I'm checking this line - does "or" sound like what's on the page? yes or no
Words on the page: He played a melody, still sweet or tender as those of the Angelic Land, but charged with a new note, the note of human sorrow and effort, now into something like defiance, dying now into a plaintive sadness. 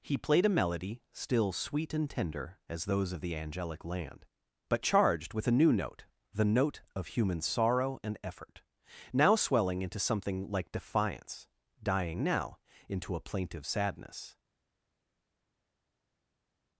no